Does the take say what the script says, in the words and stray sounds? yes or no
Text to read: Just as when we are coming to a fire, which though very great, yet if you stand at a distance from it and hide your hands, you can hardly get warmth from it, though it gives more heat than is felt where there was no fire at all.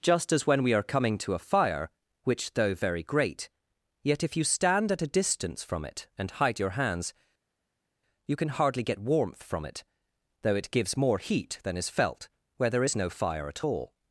no